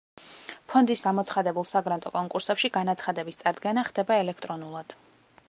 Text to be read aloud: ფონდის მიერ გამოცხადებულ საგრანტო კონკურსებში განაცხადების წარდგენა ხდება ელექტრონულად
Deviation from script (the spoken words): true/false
true